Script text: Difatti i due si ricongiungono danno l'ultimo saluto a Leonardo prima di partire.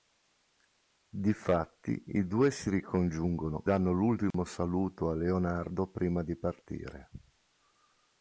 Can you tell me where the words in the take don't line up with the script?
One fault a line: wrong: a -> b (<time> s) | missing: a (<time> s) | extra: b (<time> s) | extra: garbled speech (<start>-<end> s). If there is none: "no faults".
no faults